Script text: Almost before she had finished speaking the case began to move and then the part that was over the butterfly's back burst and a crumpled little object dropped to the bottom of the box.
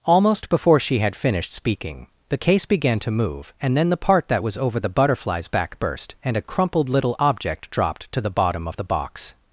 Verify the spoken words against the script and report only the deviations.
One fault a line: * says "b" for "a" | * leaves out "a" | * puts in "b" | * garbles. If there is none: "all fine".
all fine